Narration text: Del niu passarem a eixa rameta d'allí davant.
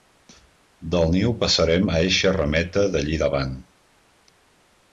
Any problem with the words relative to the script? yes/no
no